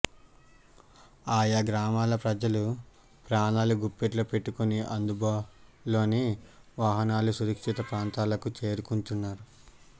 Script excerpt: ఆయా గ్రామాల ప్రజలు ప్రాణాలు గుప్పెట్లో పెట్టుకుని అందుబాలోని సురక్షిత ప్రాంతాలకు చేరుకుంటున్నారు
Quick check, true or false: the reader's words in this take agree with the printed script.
false